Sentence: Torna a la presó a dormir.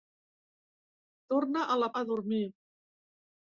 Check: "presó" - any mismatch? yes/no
yes